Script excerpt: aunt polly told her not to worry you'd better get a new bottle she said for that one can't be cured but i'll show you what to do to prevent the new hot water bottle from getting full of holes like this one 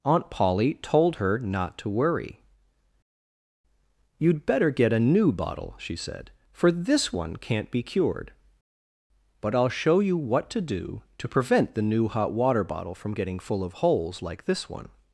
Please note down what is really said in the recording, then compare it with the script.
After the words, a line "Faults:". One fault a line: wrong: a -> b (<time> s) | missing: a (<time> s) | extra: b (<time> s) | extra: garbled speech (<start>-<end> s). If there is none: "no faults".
aunt polly told her not to worry you'd better get a new bottle she said for this one can't be cured but i'll show you what to do to prevent the new hot water bottle from getting full of holes like this one
Faults:
wrong: that -> this (6.7 s)